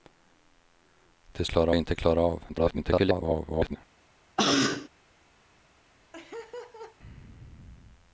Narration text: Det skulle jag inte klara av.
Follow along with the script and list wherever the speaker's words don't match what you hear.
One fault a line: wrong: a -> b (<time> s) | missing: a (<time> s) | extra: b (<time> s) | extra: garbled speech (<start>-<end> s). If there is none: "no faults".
wrong: skulle -> klara (1.4 s)
extra: garbled speech (2.5-3.8 s)